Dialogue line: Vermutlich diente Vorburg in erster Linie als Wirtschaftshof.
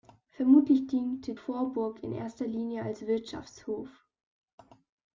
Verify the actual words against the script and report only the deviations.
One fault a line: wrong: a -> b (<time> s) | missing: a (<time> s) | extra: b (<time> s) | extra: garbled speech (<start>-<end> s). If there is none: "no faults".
no faults